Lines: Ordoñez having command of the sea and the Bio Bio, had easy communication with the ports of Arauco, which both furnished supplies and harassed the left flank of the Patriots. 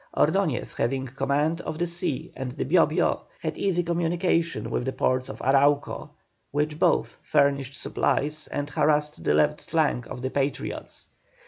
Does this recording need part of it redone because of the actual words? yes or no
no